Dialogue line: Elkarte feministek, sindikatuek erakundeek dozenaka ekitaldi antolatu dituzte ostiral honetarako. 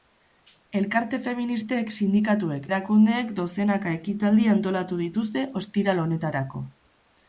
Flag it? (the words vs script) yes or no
no